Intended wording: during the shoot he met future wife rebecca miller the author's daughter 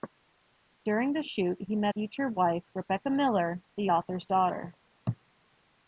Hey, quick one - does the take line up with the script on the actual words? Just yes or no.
yes